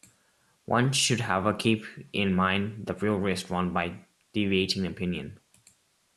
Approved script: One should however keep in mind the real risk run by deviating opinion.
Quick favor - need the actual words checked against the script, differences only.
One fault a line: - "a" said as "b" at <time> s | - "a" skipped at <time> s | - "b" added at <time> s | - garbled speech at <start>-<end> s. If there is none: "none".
none